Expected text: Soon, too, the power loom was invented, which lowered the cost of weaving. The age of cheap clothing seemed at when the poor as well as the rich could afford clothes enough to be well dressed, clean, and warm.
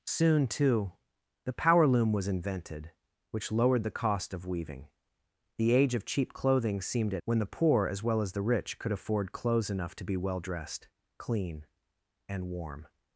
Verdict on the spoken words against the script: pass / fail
pass